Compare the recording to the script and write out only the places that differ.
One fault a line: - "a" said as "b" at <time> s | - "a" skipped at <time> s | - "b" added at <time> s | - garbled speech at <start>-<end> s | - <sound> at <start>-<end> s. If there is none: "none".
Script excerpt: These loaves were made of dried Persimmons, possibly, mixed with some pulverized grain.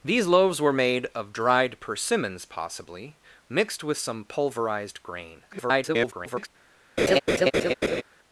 - garbled speech at 5.5-6.5 s
- laugh at 7.0-8.0 s